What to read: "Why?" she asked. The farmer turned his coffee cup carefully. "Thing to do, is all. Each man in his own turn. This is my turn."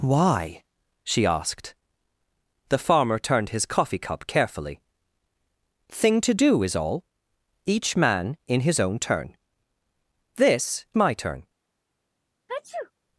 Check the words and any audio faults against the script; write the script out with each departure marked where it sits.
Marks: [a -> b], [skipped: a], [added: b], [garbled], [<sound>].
"Why?" she asked. The farmer turned his coffee cup carefully. "Thing to do, is all. Each man in his own turn. This [skipped: is] my turn." [sneeze]